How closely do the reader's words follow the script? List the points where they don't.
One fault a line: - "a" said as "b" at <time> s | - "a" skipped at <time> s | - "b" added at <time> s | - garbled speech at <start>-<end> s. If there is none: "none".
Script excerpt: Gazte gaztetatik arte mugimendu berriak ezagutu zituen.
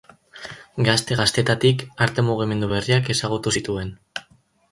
none